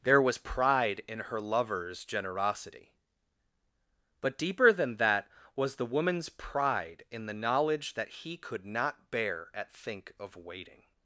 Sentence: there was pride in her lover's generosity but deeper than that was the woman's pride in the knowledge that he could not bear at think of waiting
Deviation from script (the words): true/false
false